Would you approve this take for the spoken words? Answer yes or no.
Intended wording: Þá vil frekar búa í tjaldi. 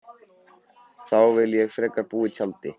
no